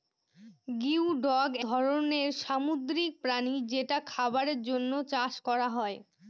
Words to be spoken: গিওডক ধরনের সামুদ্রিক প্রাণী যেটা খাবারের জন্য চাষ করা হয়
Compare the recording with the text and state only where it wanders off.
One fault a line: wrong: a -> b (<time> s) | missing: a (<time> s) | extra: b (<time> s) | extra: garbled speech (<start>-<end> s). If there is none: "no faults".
no faults